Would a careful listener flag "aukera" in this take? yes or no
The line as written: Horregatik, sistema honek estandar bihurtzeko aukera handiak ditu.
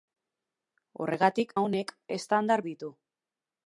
yes